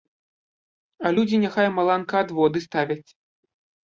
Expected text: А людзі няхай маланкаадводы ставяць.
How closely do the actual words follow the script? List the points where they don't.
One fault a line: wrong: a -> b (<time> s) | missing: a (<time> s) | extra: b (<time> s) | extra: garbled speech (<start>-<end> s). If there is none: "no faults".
no faults